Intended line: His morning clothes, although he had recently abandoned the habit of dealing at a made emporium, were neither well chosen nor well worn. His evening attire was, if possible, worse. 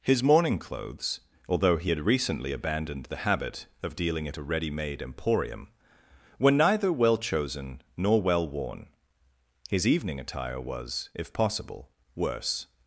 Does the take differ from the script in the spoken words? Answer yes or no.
yes